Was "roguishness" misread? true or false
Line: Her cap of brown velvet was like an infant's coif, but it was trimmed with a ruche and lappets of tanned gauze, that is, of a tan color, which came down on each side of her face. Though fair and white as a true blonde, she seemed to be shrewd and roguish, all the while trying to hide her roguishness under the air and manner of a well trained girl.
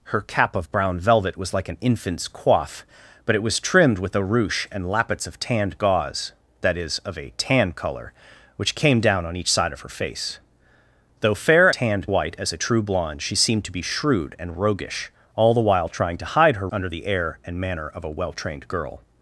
true